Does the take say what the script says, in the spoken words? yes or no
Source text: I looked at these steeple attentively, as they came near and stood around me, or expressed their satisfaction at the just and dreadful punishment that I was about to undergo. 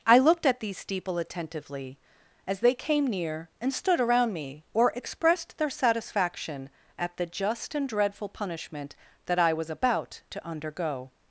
yes